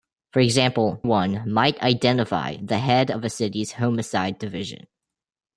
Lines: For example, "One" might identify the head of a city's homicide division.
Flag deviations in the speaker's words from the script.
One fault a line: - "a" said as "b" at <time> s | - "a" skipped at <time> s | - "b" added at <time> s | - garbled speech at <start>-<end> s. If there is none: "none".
none